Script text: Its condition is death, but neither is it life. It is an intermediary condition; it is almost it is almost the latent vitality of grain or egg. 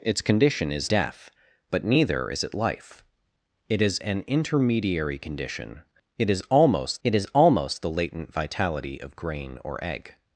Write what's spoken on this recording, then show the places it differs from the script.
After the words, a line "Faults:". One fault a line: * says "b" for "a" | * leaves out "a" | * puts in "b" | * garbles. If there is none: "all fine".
Its condition is death, but neither is it life. It is an intermediary condition; it is almost it is almost the latent vitality of grain or egg.
Faults:
all fine